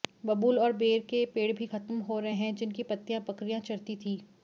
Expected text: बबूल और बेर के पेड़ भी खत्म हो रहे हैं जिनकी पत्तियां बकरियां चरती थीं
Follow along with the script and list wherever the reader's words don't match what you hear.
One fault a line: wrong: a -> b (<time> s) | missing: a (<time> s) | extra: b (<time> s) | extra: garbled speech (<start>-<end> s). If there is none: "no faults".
no faults